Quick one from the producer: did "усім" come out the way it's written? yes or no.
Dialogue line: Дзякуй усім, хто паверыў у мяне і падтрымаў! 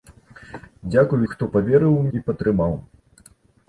no